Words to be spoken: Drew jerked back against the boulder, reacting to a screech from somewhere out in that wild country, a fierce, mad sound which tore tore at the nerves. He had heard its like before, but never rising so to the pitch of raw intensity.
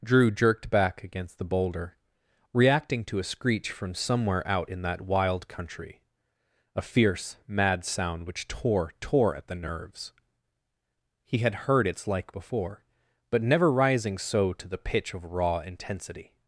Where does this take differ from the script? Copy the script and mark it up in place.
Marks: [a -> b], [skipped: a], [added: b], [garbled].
Drew jerked back against the boulder, reacting to a screech from somewhere out in that wild country, a fierce, mad sound which tore tore at the nerves. He had heard its like before, but never rising so to the pitch of raw intensity.